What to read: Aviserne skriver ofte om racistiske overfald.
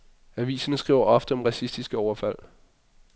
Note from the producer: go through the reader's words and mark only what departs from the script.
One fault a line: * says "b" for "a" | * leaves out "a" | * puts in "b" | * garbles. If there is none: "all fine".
all fine